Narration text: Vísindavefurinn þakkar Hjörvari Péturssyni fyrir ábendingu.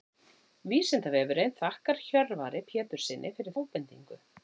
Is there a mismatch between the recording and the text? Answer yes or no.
no